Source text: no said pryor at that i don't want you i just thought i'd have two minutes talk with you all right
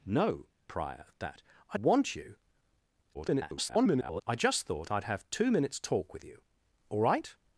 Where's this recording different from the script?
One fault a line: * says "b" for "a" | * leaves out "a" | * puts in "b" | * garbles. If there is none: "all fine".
* leaves out "said"
* leaves out "don't"
* garbles